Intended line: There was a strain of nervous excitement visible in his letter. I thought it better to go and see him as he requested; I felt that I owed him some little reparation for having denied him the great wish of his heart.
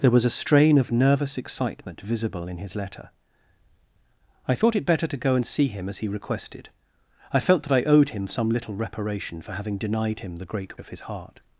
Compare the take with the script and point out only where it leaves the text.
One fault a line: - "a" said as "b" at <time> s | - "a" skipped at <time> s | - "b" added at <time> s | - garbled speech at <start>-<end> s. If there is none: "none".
- "wish" skipped at 10.8 s